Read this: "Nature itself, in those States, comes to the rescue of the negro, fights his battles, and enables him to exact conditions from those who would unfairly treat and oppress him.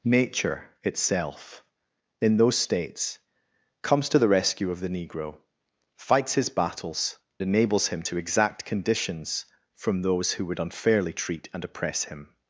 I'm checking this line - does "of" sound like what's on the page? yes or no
yes